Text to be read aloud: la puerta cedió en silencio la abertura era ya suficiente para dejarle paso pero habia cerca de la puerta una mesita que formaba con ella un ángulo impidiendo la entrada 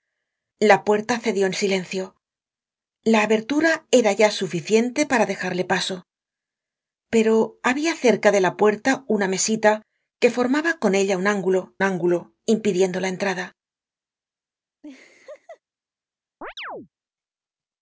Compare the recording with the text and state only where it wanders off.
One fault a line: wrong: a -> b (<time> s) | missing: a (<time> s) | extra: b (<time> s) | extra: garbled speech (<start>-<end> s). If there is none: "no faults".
extra: ángulo (11.8 s)